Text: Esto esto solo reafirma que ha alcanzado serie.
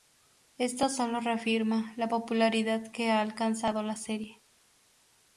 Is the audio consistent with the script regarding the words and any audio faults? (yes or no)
no